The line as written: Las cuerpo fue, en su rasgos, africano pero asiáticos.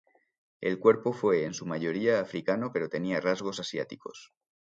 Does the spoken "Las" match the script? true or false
false